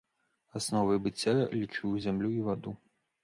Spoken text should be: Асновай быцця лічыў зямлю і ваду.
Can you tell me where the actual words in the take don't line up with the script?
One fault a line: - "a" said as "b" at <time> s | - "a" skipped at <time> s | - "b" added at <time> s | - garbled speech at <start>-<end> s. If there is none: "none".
none